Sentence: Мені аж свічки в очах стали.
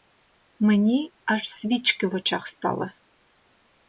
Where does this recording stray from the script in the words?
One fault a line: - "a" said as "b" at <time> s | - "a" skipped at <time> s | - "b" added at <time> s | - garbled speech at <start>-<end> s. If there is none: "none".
none